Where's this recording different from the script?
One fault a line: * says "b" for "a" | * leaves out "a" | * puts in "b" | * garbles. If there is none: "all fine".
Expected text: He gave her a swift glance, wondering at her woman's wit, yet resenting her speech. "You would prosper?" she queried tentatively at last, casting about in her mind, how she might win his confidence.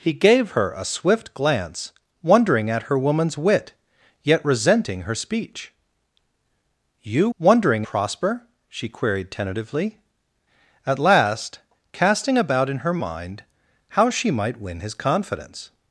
* says "wondering" for "would"